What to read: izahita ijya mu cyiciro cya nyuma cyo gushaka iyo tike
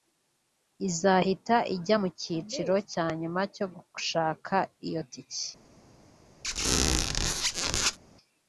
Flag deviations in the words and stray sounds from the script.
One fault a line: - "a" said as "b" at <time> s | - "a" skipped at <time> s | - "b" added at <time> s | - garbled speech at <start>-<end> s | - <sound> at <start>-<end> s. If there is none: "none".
- squeak at 6.4-8.0 s